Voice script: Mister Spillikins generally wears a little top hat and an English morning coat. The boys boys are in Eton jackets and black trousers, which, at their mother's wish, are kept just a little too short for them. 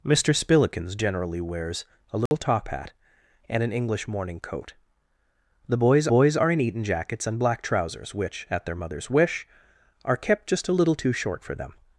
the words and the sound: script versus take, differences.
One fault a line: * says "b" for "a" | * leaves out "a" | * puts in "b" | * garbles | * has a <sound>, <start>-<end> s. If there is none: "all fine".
* has a dropout, 2.3-2.3 s